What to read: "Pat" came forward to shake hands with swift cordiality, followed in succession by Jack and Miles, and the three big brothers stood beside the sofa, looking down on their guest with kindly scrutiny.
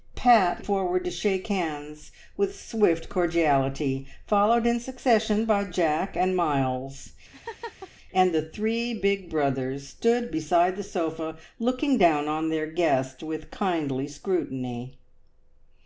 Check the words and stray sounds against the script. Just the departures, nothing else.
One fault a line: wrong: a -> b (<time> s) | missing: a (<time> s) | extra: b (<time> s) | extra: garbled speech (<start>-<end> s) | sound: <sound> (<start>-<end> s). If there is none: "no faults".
missing: came (0.7 s)
sound: laugh (7.3-7.9 s)